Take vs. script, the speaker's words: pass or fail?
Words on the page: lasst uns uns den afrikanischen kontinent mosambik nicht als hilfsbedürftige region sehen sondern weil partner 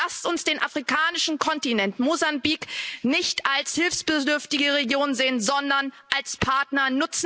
fail